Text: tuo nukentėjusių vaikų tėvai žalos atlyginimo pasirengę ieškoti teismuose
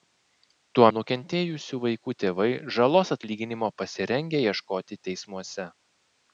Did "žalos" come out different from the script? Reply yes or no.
no